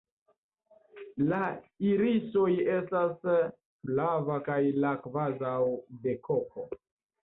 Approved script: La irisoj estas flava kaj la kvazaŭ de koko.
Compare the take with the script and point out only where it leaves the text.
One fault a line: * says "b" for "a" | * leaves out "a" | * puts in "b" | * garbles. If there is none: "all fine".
all fine